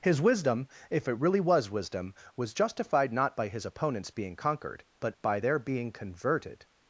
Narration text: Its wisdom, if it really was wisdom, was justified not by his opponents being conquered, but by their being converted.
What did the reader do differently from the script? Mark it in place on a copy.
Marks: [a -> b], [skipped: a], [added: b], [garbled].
[Its -> His] wisdom, if it really was wisdom, was justified not by his opponents being conquered, but by their being converted.